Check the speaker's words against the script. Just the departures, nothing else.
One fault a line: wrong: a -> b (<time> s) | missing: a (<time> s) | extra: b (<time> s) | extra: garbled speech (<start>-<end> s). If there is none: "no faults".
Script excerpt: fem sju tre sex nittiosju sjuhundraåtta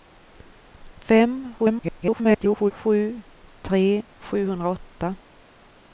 extra: garbled speech (1.6-2.7 s)
missing: sex nittiosju (3.8 s)